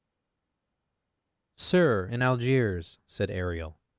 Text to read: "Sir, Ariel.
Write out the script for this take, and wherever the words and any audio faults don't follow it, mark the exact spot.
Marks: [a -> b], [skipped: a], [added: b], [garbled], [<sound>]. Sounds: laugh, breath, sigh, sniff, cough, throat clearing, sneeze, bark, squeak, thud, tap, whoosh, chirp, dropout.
"Sir, [added: in Algiers said] Ariel.